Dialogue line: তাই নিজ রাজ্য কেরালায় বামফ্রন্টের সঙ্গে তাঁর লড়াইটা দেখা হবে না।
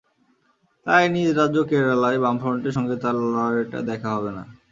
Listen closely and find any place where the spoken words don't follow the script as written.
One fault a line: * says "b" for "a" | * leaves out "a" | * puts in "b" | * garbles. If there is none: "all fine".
all fine